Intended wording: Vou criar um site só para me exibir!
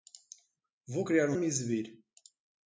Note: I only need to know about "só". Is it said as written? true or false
false